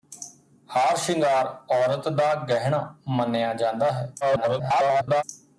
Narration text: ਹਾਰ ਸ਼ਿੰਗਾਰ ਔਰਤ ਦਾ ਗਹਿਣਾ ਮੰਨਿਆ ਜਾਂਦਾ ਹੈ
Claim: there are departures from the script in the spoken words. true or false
true